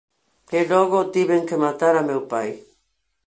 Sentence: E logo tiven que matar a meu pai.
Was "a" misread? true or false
false